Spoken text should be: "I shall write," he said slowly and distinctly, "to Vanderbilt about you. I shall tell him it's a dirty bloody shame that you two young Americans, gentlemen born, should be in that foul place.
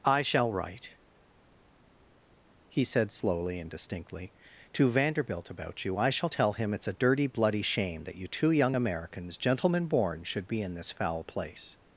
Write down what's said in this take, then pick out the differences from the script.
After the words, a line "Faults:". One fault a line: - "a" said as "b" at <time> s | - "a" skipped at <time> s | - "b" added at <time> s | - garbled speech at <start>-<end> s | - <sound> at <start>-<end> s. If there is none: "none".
"I shall write," he said slowly and distinctly, "to Vanderbilt about you. I shall tell him it's a dirty bloody shame that you two young Americans, gentlemen born, should be in this foul place.
Faults:
- "that" said as "this" at 10.7 s